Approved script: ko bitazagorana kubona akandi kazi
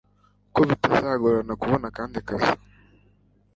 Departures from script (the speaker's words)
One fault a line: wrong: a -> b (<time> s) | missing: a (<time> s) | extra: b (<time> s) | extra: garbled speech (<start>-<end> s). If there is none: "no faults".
no faults